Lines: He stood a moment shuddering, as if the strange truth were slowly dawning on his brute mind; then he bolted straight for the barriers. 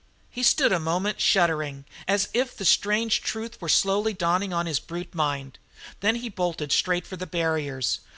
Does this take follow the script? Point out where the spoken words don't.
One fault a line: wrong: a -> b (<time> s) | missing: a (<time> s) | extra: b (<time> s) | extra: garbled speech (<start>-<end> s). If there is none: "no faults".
no faults